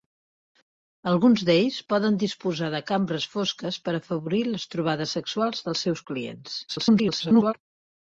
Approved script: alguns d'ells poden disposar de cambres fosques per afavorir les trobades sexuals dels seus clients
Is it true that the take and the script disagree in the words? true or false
true